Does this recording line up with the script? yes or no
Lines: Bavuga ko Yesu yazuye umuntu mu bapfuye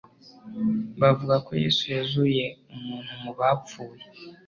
yes